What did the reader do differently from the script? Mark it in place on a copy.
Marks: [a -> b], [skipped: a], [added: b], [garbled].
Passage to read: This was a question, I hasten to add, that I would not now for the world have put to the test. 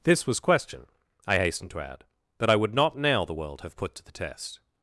This was [skipped: a] question, I hasten to add, that I would not now [skipped: for] the world have put to the test.